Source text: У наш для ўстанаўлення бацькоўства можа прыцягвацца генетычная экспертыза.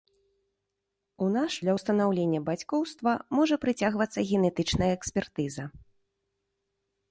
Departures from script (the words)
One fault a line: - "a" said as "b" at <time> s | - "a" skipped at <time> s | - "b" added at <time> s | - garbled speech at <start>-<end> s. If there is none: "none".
none